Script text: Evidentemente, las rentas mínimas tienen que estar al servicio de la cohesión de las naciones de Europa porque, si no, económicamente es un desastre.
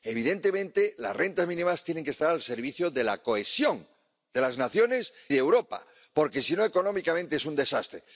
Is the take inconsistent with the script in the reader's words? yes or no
no